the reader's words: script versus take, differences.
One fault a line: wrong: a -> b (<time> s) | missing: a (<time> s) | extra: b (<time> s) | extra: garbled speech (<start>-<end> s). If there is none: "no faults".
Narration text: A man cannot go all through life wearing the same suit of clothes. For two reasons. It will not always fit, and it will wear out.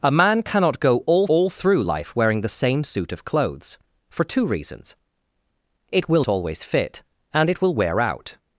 extra: all (1.3 s)
missing: not (6.2 s)